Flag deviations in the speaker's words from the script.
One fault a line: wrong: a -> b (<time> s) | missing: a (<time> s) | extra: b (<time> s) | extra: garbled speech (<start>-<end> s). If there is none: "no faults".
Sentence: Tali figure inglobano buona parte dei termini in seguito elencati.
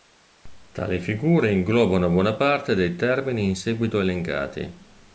no faults